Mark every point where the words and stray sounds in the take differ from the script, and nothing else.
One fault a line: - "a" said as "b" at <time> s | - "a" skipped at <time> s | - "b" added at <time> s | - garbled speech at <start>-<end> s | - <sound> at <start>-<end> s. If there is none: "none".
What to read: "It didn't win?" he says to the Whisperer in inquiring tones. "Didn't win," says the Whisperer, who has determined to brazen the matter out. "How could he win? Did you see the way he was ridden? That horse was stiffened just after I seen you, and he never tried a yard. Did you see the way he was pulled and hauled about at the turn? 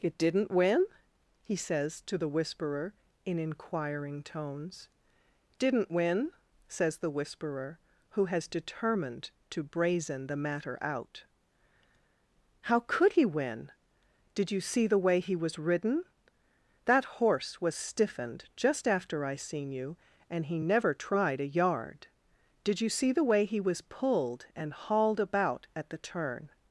none